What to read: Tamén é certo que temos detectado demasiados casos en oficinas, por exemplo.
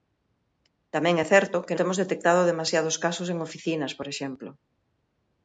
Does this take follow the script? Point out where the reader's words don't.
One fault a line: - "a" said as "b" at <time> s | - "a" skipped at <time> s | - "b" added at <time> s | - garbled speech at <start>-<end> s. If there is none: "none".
none